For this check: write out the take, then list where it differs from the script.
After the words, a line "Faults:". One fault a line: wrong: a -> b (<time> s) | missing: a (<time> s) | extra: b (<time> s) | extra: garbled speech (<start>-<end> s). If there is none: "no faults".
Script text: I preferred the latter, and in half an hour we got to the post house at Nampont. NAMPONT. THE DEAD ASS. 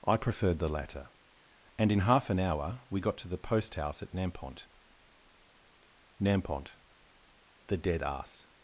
I preferred the latter, and in half an hour we got to the post house at Nampont. NAMPONT. THE DEAD ASS.
Faults:
no faults